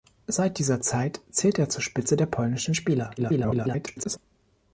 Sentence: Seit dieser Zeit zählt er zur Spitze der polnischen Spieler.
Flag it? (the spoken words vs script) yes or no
yes